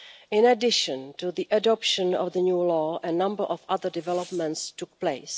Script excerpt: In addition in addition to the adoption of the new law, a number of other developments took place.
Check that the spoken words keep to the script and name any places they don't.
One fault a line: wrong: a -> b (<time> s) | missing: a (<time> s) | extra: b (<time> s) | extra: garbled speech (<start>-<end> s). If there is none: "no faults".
missing: in addition (1.1 s)